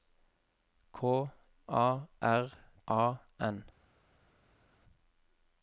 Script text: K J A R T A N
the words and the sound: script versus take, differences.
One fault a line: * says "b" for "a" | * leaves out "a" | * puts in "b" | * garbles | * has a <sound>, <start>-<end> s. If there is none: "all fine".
* leaves out "J"
* leaves out "T"